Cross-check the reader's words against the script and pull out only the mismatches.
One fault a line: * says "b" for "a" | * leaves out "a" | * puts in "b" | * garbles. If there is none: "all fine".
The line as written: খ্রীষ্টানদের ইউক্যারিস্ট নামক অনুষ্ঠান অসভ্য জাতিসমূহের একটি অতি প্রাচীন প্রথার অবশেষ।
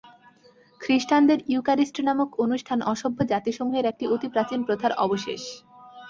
all fine